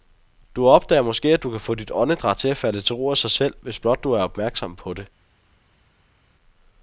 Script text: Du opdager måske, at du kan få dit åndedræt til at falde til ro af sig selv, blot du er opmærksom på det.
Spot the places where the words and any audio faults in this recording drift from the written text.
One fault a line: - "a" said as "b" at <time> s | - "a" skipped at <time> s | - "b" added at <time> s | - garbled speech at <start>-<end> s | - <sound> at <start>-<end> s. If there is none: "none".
- "hvis" added at 3.6 s